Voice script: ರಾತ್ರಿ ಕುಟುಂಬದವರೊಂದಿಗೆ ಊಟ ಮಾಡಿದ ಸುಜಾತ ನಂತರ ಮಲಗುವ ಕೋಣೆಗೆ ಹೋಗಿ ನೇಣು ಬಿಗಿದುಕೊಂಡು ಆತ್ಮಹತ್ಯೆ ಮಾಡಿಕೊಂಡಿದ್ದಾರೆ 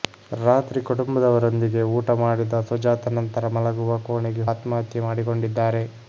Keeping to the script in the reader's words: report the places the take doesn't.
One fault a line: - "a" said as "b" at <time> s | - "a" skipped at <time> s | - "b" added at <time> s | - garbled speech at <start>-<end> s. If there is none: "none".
- "ಹೋಗಿ ನೇಣು ಬಿಗಿದುಕೊಂಡು" skipped at 4.5 s